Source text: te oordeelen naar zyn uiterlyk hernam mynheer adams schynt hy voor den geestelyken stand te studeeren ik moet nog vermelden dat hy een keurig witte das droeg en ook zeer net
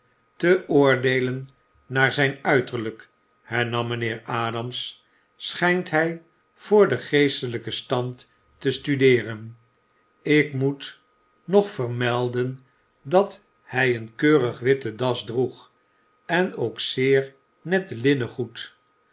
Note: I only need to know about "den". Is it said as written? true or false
true